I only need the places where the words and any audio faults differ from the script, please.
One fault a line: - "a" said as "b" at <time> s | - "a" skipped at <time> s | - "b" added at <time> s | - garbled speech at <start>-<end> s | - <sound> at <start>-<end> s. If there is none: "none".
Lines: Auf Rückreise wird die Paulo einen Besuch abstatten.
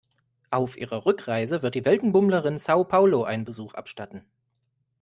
- "ihrer" added at 0.8 s
- "Weltenbummlerin Sao" added at 1.9 s